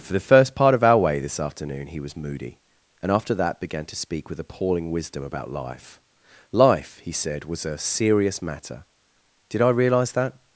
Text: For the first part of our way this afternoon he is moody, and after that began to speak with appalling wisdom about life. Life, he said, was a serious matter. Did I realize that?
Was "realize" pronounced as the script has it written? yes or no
yes